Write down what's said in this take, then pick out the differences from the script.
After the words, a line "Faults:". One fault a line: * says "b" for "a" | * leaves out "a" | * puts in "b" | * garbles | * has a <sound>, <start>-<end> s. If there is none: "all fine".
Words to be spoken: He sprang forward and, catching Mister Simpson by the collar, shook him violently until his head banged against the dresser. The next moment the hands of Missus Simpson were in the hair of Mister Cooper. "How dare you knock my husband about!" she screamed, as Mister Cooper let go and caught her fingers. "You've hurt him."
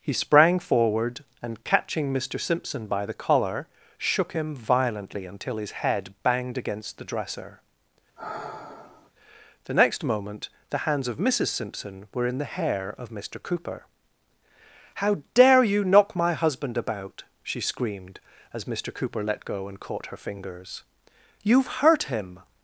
He sprang forward and, catching Mister Simpson by the collar, shook him violently until his head banged against the dresser. The next moment the hands of Missus Simpson were in the hair of Mister Cooper. "How dare you knock my husband about!" she screamed, as Mister Cooper let go and caught her fingers. "You've hurt him."
Faults:
* has a sigh, 8.2-9.1 s